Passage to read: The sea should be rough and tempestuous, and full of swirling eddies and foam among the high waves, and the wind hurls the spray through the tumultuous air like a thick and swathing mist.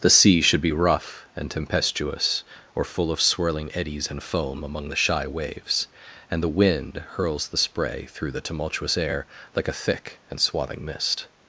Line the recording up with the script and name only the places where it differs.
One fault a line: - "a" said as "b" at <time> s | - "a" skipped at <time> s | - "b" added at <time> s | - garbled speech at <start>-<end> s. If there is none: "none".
- "and" said as "or" at 2.7 s
- "high" said as "shy" at 4.9 s